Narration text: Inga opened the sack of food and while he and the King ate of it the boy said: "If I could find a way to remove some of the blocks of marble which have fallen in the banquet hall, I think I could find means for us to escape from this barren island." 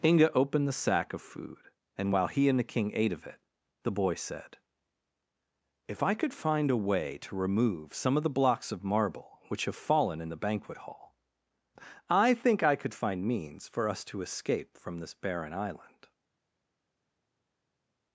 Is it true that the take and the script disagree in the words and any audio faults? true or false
false